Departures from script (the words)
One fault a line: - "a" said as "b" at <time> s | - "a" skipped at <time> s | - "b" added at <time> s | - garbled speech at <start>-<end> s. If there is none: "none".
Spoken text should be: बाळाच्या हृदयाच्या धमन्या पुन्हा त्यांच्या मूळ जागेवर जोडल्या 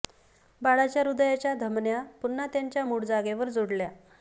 none